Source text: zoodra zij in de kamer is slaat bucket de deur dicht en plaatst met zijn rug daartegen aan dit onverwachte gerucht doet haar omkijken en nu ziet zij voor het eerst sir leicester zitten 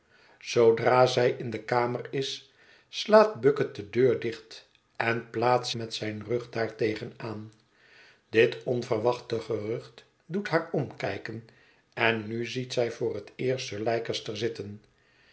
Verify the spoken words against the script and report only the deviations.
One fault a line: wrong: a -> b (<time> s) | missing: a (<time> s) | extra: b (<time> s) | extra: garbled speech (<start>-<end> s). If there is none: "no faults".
no faults